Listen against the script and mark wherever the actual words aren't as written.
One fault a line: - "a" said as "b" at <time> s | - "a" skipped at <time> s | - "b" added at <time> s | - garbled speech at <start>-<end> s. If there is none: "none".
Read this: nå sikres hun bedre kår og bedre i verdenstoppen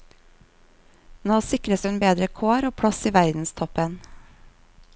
- "bedre" said as "plass" at 2.8 s